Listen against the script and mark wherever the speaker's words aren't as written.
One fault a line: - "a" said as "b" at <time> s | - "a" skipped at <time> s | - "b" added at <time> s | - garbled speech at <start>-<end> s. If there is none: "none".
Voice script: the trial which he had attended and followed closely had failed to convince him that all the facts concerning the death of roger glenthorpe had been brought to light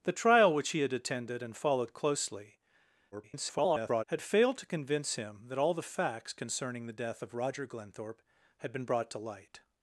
- garbled speech at 3.1-4.0 s